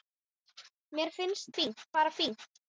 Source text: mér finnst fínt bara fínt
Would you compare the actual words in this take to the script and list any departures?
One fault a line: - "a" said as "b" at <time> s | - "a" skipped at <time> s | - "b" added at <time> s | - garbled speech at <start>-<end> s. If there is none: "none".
none